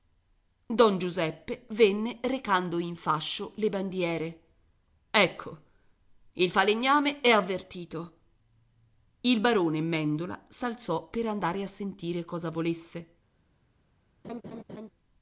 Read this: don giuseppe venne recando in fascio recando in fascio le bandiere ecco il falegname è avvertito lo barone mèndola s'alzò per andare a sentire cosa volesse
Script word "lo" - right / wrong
wrong